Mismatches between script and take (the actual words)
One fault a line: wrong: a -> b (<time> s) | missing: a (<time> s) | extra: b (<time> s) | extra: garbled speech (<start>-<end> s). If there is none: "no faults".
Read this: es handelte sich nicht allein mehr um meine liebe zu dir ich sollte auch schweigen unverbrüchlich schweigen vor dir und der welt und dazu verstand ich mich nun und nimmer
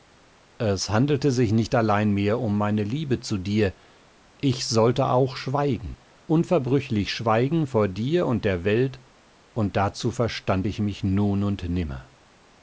no faults